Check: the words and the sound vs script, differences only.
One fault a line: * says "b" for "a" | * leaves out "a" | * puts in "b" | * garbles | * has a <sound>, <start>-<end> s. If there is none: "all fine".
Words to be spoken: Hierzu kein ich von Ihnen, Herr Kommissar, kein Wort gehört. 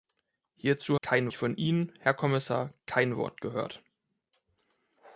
all fine